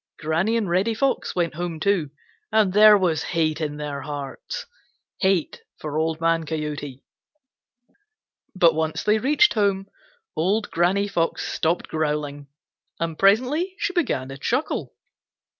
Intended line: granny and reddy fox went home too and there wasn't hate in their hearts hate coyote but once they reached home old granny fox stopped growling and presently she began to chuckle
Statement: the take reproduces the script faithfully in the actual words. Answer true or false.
false